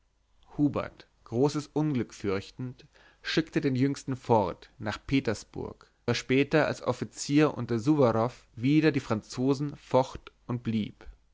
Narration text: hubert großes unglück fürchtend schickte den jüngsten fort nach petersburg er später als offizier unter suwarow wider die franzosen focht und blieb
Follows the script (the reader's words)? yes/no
yes